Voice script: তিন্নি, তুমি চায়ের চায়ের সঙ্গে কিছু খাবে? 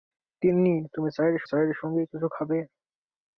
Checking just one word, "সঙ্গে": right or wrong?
right